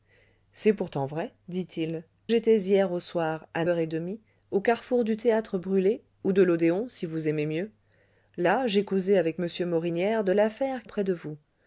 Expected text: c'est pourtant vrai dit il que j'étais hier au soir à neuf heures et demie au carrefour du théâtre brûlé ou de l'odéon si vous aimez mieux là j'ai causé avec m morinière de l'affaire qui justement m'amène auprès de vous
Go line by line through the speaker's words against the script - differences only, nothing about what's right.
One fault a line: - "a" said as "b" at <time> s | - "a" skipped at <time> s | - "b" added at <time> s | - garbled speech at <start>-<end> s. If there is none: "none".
- "que" skipped at 2.0 s
- "neuf" skipped at 3.6 s
- "qui justement m'amène" skipped at 10.8 s